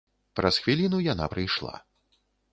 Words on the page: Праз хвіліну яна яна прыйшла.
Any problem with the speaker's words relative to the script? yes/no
yes